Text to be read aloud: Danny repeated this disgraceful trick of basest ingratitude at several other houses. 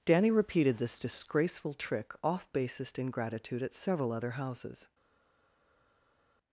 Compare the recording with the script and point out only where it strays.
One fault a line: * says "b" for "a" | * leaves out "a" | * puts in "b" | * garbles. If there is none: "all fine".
* says "off" for "of"